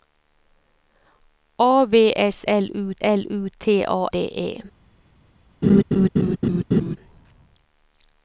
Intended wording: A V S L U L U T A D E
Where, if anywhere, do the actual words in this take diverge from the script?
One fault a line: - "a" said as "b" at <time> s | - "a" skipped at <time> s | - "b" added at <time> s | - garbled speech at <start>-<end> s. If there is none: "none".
none